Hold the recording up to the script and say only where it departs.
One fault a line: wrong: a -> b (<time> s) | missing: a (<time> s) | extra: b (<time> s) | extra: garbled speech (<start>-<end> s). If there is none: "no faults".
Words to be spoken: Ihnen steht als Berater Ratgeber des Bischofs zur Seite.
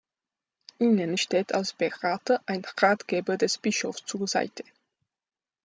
extra: ein (2.5 s)